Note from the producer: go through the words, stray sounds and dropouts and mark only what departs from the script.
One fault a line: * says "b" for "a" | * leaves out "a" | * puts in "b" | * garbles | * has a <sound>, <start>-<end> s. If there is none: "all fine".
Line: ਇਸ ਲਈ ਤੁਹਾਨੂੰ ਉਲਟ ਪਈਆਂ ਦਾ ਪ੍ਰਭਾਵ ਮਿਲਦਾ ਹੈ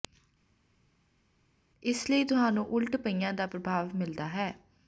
all fine